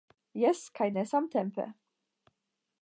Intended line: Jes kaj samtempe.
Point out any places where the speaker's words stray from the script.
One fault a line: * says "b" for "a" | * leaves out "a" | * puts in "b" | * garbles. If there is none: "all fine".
* puts in "ne"